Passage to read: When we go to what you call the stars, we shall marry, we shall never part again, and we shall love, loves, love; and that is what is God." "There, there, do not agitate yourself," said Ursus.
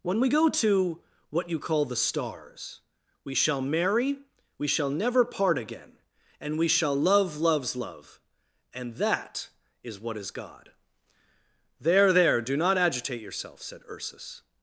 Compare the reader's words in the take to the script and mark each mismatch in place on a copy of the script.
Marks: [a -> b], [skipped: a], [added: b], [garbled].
When we go to what you call the stars, we shall marry, we shall never part again, and we shall love, loves, love; and that is what is God." "There, there, do not agitate yourself," said Ursus.